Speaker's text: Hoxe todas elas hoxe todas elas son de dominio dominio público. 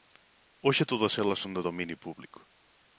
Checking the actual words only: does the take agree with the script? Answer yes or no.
no